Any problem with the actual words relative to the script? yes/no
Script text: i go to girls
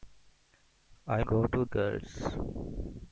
no